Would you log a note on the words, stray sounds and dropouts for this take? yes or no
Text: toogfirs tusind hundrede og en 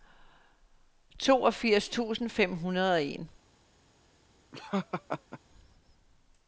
yes